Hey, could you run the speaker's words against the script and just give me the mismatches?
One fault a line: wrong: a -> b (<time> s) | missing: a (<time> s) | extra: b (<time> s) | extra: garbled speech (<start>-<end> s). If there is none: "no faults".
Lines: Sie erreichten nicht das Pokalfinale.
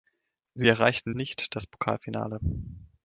no faults